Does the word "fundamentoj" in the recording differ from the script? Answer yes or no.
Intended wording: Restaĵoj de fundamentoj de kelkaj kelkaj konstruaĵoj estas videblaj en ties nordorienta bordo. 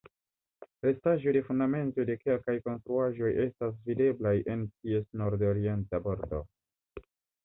no